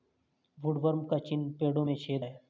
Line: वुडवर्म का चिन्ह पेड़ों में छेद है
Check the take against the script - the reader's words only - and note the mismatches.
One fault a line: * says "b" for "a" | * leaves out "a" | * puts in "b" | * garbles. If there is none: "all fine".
all fine